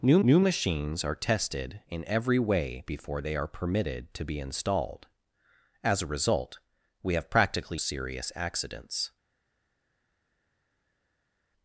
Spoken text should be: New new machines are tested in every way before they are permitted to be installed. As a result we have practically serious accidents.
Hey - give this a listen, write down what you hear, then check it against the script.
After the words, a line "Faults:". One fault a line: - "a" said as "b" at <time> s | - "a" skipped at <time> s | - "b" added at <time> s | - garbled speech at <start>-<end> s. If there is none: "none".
New new machines are tested in every way before they are permitted to be installed. As a result we have practically serious accidents.
Faults:
none